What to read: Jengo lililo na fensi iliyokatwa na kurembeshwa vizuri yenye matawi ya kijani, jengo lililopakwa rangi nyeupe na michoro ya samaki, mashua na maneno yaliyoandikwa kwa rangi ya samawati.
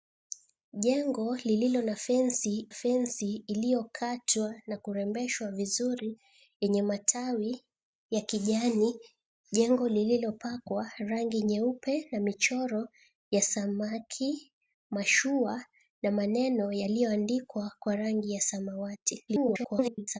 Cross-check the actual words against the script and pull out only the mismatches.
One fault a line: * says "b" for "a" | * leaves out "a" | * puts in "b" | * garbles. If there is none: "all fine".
* puts in "fensi"
* garbles